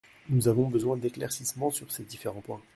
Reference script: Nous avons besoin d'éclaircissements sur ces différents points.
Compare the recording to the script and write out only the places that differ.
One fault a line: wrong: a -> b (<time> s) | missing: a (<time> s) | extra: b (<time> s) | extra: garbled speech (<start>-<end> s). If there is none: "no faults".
no faults